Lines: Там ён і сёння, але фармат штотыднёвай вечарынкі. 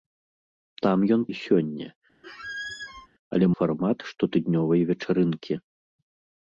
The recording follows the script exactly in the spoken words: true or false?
true